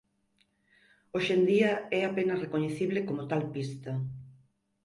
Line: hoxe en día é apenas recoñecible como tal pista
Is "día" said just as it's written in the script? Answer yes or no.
yes